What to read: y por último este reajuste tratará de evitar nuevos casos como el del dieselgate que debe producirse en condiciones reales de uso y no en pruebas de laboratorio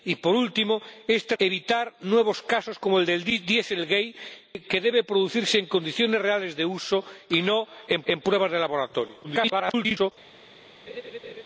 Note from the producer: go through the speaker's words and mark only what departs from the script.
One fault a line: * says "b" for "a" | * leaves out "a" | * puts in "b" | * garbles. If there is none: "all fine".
* leaves out "reajuste tratará"
* puts in "en"
* garbles